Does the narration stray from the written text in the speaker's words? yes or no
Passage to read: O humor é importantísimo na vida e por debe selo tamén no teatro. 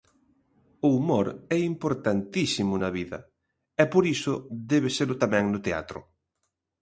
yes